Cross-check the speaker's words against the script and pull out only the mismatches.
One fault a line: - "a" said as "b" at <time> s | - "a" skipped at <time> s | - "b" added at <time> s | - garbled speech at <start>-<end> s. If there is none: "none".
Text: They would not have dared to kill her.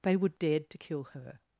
- "not have" skipped at 0.4 s